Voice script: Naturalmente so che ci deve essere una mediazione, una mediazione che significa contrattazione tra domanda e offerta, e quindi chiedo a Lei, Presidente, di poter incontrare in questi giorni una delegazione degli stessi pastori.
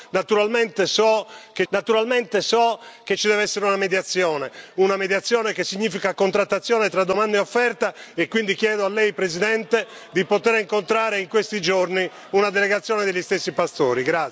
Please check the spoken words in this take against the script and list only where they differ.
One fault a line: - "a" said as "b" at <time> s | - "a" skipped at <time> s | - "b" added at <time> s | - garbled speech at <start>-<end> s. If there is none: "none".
- "naturalmente so che" added at 1.7 s